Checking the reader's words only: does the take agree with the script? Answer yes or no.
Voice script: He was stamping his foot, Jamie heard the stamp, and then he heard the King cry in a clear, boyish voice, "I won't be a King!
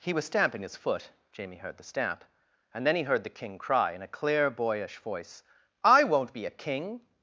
yes